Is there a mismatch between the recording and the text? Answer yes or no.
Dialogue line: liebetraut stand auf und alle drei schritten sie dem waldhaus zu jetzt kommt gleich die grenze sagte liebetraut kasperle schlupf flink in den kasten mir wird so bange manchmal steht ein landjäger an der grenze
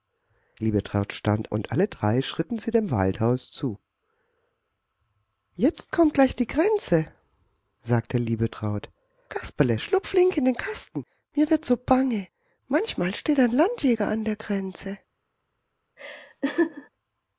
yes